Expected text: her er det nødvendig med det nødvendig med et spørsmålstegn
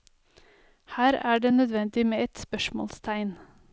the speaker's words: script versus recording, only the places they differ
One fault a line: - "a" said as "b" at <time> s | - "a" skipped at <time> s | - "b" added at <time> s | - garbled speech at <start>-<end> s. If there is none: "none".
- "det nødvendig med" skipped at 2.2 s